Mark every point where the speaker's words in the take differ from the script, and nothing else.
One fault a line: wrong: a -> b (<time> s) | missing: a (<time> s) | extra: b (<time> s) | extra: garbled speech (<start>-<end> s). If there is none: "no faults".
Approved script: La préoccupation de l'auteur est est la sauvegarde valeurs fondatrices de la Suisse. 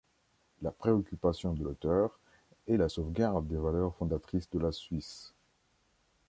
missing: est (2.8 s)
extra: des (3.5 s)